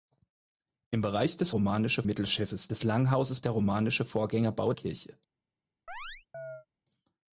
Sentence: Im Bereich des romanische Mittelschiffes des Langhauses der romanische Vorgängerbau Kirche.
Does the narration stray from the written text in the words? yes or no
no